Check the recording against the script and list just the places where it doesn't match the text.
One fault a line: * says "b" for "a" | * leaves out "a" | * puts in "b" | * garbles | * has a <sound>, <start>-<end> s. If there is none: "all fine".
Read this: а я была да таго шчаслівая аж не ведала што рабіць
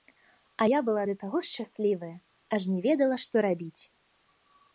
all fine